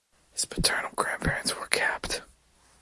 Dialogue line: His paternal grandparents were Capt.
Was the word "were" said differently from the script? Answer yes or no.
no